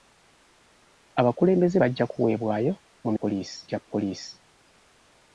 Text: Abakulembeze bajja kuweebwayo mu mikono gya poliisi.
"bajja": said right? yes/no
yes